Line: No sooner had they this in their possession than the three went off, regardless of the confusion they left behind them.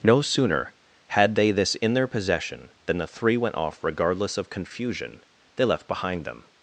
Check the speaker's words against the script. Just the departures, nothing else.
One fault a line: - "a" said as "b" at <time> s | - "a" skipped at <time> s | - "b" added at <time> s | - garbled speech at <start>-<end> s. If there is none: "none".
- "the" skipped at 4.5 s